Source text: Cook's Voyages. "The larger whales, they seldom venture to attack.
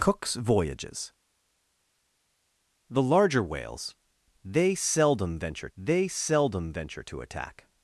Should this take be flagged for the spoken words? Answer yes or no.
yes